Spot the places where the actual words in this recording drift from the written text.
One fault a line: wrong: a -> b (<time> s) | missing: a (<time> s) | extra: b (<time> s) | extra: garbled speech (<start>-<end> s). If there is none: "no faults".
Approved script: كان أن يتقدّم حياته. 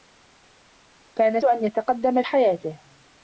no faults